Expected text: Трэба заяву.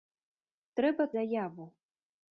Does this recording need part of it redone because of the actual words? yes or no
no